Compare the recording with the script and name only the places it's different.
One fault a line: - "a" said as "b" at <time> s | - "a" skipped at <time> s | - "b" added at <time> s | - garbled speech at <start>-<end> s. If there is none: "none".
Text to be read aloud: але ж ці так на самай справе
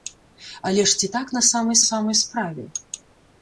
- "самай" added at 1.9 s